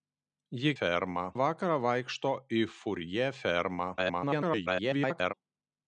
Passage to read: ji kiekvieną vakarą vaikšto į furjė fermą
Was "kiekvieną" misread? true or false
true